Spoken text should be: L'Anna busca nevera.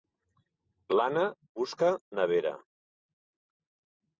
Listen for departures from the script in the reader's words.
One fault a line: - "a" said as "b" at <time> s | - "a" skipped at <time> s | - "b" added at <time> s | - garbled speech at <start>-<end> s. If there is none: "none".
none